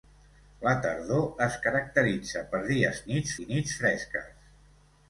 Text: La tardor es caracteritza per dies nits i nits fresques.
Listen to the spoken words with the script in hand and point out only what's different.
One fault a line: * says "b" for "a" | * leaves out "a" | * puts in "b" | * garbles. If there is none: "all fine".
all fine